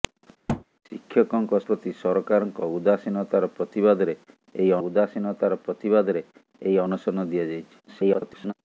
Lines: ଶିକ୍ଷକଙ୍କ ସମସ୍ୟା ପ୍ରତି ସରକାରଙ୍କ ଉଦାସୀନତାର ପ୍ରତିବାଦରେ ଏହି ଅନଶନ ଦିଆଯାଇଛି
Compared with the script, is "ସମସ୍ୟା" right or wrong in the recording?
wrong